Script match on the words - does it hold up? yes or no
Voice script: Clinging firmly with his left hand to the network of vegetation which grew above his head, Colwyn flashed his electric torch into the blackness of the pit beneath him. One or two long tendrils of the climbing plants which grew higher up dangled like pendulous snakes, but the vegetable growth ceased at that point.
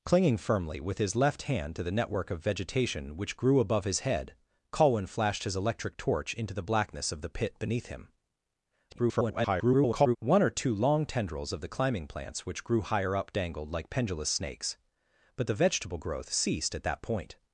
no